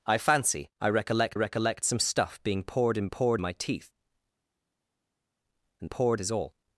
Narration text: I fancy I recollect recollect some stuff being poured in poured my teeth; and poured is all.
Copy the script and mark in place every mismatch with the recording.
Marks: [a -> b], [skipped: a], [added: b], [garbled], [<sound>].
I fancy I recollect recollect some stuff being poured in poured my teeth; and poured is all.